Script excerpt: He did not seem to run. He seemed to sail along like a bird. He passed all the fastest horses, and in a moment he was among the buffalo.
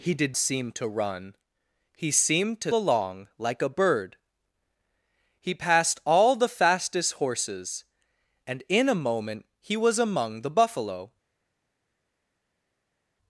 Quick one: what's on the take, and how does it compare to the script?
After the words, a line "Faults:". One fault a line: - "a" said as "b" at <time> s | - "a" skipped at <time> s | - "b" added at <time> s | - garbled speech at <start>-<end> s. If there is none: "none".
He did seem to run. He seemed to along like a bird. He passed all the fastest horses, and in a moment he was among the buffalo.
Faults:
- "not" skipped at 0.3 s
- "sail" skipped at 2.7 s